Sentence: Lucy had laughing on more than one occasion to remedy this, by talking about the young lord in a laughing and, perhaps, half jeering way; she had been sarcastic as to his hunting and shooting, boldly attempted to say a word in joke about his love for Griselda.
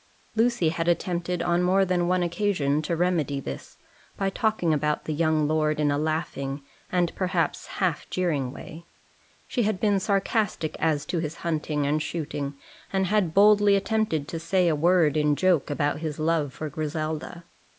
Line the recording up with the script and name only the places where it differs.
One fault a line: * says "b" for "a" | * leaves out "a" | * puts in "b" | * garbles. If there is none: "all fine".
* says "attempted" for "laughing"
* puts in "and had"